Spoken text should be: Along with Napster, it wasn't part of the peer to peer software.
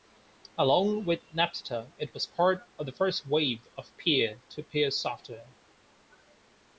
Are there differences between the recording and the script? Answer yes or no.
yes